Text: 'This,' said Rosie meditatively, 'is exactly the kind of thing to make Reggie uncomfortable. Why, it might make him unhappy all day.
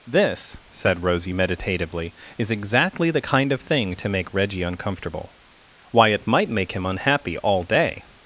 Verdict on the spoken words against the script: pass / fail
pass